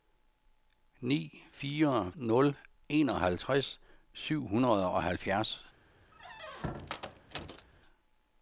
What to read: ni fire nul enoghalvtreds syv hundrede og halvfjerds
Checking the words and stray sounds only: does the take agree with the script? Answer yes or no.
no